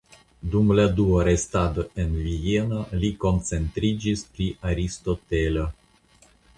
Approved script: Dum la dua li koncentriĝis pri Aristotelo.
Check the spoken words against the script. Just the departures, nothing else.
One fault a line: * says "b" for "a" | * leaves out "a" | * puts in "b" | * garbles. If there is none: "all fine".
* puts in "restado en Vieno"